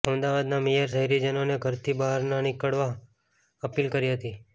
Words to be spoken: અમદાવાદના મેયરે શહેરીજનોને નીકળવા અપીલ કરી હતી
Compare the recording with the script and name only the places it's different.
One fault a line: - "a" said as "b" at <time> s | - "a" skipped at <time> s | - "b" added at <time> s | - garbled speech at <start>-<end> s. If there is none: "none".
- "ઘરથી બહાર ન" added at 1.6 s